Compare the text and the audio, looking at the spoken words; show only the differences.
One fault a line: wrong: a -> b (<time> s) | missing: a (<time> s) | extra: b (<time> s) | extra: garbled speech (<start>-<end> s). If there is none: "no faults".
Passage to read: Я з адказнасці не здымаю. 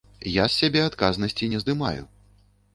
extra: сябе (0.6 s)